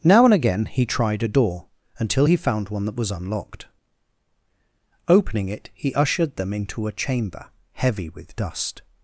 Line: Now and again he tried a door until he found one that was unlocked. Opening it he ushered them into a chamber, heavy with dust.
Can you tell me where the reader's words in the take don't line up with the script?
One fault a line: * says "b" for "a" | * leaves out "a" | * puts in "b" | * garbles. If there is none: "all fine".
all fine